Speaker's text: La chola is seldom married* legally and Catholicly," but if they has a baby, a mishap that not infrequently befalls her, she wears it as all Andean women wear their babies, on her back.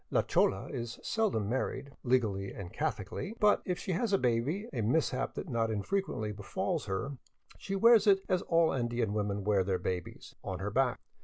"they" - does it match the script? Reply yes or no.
no